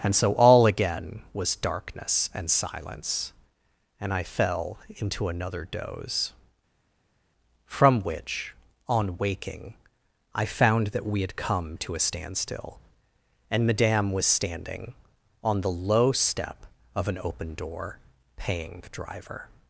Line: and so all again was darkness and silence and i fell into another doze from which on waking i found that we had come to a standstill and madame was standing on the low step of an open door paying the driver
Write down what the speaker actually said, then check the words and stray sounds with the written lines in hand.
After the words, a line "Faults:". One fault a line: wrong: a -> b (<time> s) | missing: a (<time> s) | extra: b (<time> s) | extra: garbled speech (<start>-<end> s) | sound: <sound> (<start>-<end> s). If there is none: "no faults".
and so all again was darkness and silence and i fell into another doze from which on waking i found that we had come to a standstill and madame was standing on the low step of an open door paying the driver
Faults:
no faults